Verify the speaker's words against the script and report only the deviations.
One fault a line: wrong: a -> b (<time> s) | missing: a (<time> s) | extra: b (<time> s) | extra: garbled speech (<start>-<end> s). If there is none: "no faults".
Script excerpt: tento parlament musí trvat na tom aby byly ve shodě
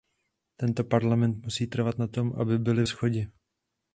missing: ve (2.8 s)